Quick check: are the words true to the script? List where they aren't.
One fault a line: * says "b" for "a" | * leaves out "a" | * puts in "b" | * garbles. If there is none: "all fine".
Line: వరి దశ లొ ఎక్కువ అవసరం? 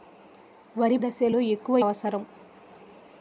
all fine